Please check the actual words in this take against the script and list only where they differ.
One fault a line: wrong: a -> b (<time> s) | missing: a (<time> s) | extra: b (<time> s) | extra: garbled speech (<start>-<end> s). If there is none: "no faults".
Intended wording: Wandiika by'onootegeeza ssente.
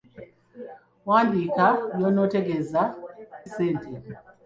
no faults